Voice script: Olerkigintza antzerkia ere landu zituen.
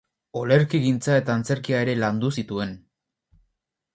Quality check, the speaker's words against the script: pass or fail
fail